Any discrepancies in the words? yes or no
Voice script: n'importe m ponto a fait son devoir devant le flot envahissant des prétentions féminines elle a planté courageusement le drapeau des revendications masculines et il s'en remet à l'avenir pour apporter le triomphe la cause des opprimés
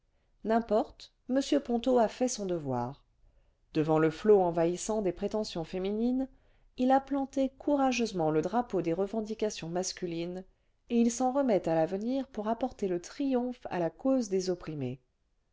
yes